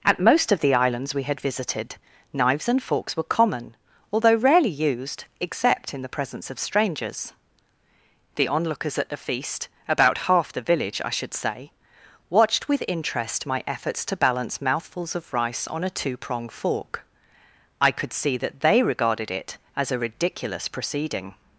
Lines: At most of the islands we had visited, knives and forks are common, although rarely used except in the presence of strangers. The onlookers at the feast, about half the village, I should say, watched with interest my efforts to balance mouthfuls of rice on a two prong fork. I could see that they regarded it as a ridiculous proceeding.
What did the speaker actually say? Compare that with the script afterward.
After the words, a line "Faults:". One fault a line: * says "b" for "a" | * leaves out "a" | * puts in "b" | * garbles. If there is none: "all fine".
At most of the islands we had visited, knives and forks were common, although rarely used except in the presence of strangers. The onlookers at the feast, about half the village, I should say, watched with interest my efforts to balance mouthfuls of rice on a two prong fork. I could see that they regarded it as a ridiculous proceeding.
Faults:
* says "were" for "are"